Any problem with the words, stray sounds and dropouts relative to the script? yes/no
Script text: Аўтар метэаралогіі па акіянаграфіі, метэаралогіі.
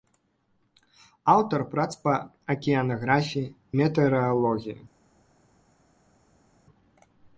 yes